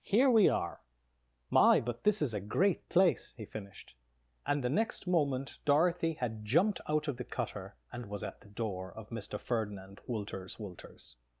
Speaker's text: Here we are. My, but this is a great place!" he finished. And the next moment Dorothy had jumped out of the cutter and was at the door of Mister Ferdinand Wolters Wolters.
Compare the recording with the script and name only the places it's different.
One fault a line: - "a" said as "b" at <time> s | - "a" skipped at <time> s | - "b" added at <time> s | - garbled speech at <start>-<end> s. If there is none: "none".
none